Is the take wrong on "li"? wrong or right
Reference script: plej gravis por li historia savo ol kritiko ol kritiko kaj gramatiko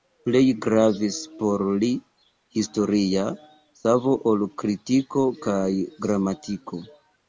right